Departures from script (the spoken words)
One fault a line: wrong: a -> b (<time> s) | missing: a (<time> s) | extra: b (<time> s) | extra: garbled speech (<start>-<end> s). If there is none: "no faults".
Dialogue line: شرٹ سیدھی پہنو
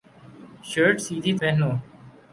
no faults